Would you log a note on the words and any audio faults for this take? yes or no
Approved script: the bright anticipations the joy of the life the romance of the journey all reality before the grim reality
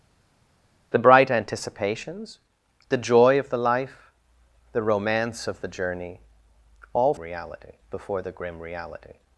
no